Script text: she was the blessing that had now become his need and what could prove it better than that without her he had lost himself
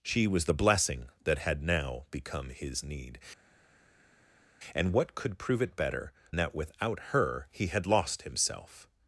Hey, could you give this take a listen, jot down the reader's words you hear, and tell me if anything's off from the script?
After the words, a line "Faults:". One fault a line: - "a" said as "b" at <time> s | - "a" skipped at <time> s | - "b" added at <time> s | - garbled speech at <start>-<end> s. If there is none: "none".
she was the blessing that had now become his need and what could prove it better that without her he had lost himself
Faults:
- "than" skipped at 6.1 s